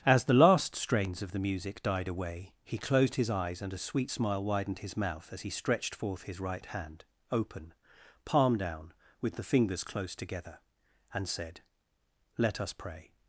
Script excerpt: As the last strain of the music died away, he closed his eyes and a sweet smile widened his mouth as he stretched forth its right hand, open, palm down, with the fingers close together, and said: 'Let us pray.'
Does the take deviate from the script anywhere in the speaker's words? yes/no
yes